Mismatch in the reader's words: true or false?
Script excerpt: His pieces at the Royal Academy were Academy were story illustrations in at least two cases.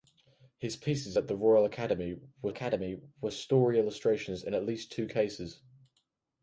false